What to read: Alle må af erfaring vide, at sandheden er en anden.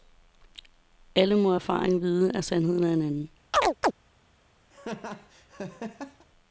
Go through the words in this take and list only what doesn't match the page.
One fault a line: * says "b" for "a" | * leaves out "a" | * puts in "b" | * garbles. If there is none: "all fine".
all fine